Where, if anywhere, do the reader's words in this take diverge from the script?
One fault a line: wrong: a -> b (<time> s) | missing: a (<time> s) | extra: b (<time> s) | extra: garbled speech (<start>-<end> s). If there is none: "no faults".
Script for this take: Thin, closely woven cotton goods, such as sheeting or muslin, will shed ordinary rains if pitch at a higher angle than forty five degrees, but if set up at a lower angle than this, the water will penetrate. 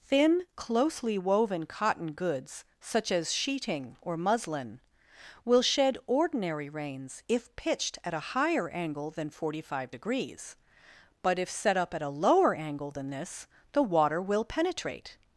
wrong: pitch -> pitched (7.5 s)